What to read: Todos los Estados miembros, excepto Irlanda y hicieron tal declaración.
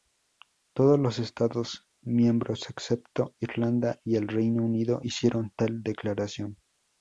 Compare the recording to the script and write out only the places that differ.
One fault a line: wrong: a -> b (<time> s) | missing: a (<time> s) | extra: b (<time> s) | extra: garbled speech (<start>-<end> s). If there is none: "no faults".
extra: el Reino Unido (4.2 s)